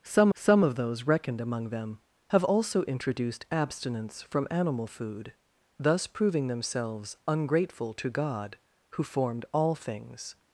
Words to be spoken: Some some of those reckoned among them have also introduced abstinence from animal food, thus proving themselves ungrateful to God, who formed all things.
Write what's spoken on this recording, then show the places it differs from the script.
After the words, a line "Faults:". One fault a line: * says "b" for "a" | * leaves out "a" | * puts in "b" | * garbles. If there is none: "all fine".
Some some of those reckoned among them have also introduced abstinence from animal food, thus proving themselves ungrateful to God, who formed all things.
Faults:
all fine